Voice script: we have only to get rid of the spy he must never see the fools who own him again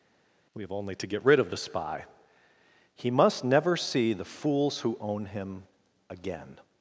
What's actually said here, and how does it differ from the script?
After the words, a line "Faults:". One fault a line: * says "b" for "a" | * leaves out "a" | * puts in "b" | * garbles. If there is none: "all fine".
we have only to get rid of the spy he must never see the fools who own him again
Faults:
all fine